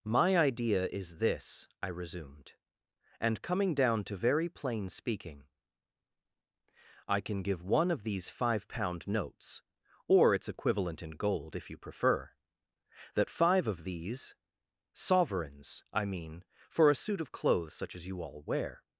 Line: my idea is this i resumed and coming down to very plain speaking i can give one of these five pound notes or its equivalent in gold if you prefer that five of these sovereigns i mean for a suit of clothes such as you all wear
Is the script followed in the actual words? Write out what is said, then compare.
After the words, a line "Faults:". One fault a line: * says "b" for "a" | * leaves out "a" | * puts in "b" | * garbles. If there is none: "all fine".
my idea is this i resumed and coming down to very plain speaking i can give one of these five pound notes or its equivalent in gold if you prefer that five of these sovereigns i mean for a suit of clothes such as you all wear
Faults:
all fine